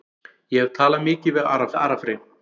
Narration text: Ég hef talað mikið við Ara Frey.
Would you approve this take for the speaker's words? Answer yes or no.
no